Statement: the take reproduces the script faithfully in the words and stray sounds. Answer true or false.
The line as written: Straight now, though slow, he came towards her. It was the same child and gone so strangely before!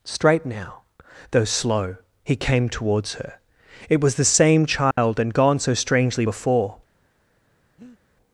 false